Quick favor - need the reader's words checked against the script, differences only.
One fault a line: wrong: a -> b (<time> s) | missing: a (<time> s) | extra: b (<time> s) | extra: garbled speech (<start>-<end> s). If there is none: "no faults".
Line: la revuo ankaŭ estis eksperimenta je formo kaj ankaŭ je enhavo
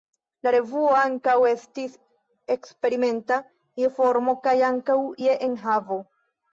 no faults